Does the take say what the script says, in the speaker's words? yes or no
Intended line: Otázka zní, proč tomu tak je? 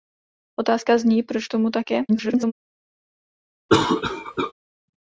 no